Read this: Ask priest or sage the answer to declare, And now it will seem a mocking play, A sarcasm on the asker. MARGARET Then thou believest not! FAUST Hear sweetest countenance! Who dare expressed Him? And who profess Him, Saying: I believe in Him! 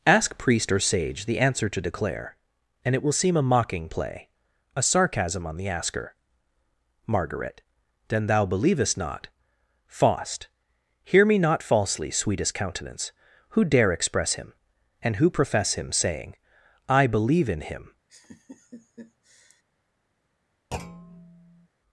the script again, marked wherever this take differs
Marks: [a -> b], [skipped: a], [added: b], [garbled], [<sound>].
Ask priest or sage the answer to declare, And [skipped: now] it will seem a mocking play, A sarcasm on the asker. MARGARET Then thou believest not! FAUST Hear [added: me not falsely] sweetest countenance! Who dare [expressed -> express] Him? And who profess Him, Saying: I believe in Him! [laugh] [thud]